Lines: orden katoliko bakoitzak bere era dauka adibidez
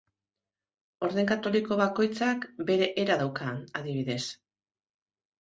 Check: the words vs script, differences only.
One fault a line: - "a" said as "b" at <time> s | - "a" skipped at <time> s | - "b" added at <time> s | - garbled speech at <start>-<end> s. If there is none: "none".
none